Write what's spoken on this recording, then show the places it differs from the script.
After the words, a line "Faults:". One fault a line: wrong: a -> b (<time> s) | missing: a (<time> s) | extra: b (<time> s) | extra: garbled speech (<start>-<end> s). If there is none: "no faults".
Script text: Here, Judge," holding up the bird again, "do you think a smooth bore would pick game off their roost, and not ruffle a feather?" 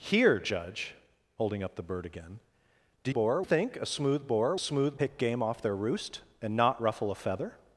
Here, Judge," holding up the bird again, "do bore think a smooth bore smooth pick game off their roost, and not ruffle a feather?"
Faults:
wrong: you -> bore (3.1 s)
wrong: would -> smooth (4.6 s)